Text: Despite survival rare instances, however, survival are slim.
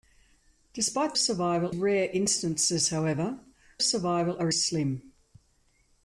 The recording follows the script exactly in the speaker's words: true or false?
true